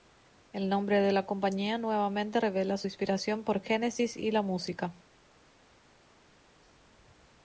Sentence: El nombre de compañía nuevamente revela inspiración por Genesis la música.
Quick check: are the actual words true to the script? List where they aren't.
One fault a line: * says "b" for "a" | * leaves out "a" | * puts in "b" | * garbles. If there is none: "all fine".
* puts in "la"
* puts in "su"
* puts in "y"